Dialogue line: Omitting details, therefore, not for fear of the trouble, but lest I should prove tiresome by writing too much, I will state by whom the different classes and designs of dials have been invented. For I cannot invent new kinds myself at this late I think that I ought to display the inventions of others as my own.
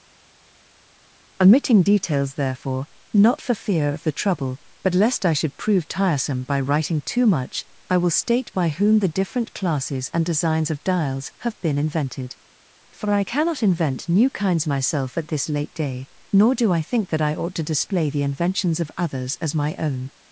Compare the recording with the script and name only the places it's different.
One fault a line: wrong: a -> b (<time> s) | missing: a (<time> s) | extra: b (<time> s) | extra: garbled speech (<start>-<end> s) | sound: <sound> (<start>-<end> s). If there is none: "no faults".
extra: day nor do (15.7 s)